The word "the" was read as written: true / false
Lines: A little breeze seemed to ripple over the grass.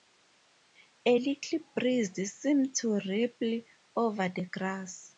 true